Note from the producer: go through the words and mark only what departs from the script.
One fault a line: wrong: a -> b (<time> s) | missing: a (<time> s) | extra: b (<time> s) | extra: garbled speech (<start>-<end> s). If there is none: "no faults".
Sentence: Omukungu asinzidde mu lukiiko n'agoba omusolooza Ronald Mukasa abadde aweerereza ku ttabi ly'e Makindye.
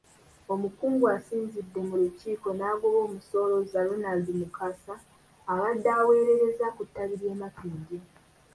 no faults